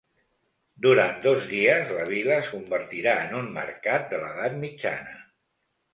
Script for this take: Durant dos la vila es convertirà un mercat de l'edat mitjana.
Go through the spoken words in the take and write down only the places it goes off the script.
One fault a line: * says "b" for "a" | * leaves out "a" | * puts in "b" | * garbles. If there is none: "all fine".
* puts in "dies"
* puts in "en"